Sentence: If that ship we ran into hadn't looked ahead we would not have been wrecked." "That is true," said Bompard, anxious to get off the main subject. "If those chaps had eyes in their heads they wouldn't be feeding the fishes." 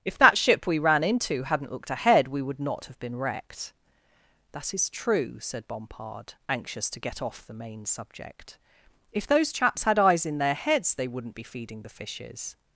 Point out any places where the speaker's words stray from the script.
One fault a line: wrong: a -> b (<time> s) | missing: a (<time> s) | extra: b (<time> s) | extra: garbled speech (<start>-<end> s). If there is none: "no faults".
no faults